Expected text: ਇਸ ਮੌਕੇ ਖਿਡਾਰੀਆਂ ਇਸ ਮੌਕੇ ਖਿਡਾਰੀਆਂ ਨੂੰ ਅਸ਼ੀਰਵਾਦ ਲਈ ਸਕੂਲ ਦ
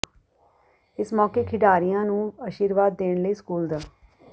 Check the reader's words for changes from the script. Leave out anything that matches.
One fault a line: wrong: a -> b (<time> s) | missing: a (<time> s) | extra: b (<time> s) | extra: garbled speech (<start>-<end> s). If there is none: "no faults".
missing: ਇਸ ਮੌਕੇ ਖਿਡਾਰੀਆਂ (2.0 s)
extra: ਦੇਣ (3.0 s)